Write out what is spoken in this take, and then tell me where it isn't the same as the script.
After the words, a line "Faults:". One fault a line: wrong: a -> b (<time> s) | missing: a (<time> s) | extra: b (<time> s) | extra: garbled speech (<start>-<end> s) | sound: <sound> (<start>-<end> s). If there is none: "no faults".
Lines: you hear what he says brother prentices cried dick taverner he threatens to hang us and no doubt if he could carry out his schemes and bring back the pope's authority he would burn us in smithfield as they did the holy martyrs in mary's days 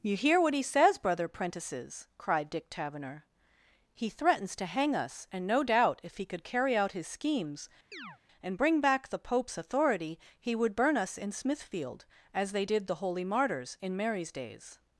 you hear what he says brother prentices cried dick taverner he threatens to hang us and no doubt if he could carry out his schemes and bring back the pope's authority he would burn us in smithfield as they did the holy martyrs in mary's days
Faults:
sound: chirp (7.9-8.2 s)